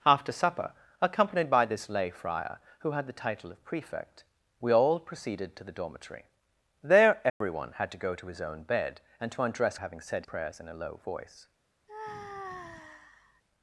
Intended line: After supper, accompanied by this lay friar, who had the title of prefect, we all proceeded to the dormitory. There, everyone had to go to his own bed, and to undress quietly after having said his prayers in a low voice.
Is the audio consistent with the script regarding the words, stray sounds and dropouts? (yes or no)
no